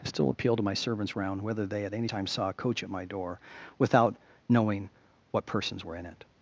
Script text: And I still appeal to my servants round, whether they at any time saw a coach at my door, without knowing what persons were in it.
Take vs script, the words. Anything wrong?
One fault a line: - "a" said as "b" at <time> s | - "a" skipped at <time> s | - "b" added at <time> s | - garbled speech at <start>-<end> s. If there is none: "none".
- "And" skipped at 0.0 s